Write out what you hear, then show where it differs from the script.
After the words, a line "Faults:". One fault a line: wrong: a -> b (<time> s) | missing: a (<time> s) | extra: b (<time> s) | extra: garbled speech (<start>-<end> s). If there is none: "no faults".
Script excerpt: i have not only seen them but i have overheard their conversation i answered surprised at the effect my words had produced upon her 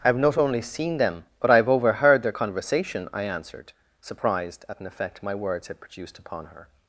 i have not only seen them but i have overheard their conversation i answered surprised at an effect my words had produced upon her
Faults:
wrong: the -> an (4.8 s)